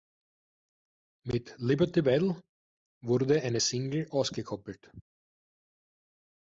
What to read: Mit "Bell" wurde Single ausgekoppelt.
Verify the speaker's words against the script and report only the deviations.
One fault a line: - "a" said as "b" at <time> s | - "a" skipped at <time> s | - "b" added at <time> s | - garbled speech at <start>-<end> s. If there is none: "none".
- "Liberty" added at 1.6 s
- "eine" added at 3.4 s